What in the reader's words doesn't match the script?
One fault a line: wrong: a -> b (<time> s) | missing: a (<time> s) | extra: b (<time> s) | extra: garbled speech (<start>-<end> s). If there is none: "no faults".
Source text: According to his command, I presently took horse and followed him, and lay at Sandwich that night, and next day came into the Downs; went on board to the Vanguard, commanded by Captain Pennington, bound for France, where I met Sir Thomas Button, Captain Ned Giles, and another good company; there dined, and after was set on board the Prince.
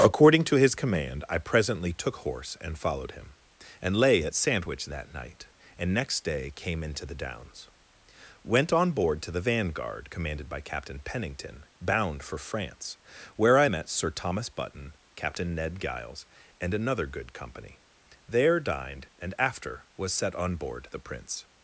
no faults